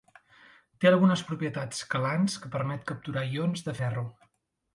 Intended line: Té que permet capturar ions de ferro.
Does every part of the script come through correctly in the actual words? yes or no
no